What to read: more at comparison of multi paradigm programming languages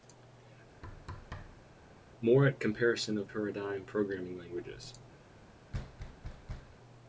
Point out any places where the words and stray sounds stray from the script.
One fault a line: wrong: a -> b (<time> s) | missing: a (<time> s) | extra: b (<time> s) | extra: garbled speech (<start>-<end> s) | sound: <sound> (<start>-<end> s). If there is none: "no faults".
sound: thud (0.8-1.7 s)
missing: multi (3.3 s)
sound: thud (5.7-6.8 s)